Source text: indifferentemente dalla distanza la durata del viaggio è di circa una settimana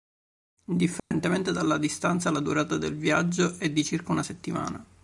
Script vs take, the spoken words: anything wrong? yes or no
no